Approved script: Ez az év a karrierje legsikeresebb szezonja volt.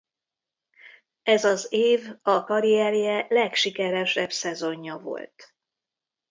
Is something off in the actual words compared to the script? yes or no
no